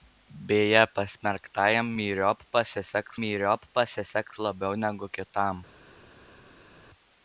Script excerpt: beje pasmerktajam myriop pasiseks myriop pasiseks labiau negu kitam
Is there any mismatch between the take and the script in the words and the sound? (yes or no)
no